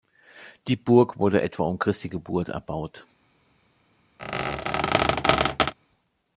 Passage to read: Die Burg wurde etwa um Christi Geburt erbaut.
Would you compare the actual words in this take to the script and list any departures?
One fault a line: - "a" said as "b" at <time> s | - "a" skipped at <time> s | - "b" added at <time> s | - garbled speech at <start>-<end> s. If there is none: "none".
none